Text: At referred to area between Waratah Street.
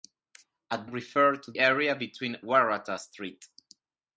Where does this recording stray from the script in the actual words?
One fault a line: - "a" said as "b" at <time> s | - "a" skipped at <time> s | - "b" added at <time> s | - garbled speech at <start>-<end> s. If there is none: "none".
none